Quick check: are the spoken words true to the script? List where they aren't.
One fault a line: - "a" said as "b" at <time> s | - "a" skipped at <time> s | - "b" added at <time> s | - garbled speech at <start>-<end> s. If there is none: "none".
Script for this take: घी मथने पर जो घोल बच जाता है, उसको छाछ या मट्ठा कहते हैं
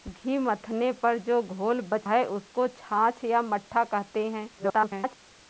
- "जाता" skipped at 2.1 s
- garbled speech at 4.6-5.2 s